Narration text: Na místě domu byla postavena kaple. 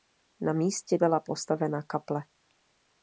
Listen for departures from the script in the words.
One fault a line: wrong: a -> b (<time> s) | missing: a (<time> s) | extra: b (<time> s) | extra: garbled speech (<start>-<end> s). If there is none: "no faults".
missing: domu (1.0 s)